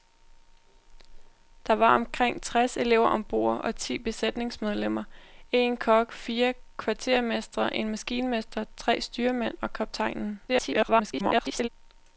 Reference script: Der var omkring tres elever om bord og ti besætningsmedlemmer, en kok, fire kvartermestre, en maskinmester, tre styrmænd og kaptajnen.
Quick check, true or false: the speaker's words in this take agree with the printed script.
false